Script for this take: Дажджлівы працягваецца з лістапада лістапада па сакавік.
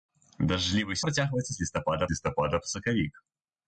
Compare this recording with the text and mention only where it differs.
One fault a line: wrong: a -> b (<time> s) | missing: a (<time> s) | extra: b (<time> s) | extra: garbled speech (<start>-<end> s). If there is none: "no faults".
no faults